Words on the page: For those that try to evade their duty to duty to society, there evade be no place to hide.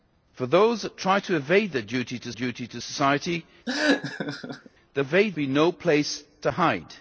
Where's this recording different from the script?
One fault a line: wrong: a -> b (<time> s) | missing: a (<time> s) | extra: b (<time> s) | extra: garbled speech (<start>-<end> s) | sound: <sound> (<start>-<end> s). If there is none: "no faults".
sound: laugh (3.7-4.7 s)